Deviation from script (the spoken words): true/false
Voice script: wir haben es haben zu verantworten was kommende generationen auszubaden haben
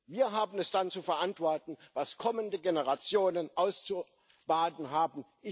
true